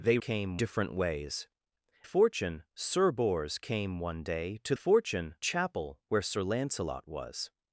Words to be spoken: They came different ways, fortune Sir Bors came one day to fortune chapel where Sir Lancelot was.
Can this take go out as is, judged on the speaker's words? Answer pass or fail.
pass